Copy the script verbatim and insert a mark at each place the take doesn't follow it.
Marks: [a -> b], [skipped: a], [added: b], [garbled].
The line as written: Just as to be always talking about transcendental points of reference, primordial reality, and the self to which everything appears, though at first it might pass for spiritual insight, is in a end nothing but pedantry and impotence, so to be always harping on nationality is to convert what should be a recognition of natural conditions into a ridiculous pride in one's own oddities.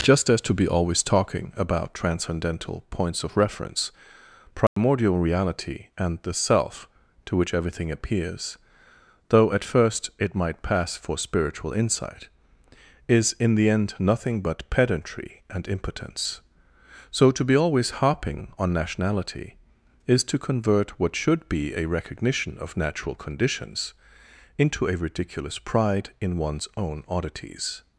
Just as to be always talking about transcendental points of reference, primordial reality, and the self to which everything appears, though at first it might pass for spiritual insight, is in [a -> the] end nothing but pedantry and impotence, so to be always harping on nationality is to convert what should be a recognition of natural conditions into a ridiculous pride in one's own oddities.